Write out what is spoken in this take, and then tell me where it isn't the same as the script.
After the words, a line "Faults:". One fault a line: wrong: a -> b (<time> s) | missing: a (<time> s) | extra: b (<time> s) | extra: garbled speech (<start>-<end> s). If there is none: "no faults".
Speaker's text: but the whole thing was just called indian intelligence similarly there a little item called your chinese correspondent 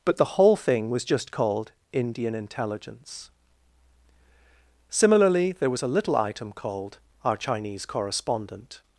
but the whole thing was just called indian intelligence similarly there was a little item called our chinese correspondent
Faults:
extra: was (5.7 s)
wrong: your -> our (7.2 s)